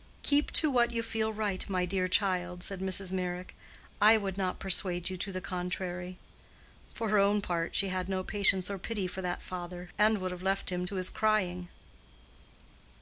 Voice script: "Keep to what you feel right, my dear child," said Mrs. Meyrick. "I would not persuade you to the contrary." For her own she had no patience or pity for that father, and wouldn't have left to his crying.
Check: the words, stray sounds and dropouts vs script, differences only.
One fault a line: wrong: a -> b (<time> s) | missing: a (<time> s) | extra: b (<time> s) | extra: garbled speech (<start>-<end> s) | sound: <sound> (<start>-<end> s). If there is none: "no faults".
extra: part (7.4 s)
wrong: wouldn't -> would (10.2 s)
extra: him (10.7 s)